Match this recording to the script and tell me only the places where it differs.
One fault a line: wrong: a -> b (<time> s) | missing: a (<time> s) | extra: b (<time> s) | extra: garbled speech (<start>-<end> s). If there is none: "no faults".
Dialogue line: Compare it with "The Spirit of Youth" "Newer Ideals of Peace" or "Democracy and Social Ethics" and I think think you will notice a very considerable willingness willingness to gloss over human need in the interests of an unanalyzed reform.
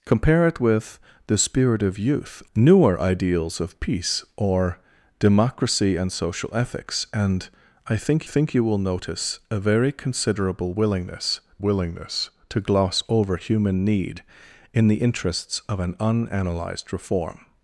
no faults